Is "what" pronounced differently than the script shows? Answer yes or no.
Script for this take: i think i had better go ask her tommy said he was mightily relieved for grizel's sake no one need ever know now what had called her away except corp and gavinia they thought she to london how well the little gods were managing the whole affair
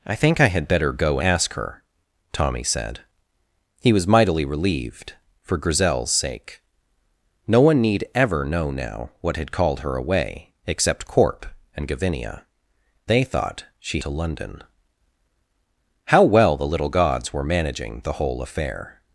no